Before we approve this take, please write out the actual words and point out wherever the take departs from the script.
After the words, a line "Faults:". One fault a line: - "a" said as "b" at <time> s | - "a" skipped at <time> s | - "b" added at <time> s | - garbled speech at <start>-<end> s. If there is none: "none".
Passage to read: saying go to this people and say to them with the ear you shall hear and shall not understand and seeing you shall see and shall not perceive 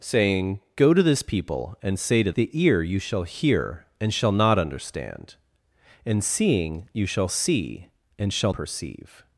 saying go to this people and say to the ear you shall hear and shall not understand and seeing you shall see and shall perceive
Faults:
- "them with" skipped at 2.3 s
- "not" skipped at 8.5 s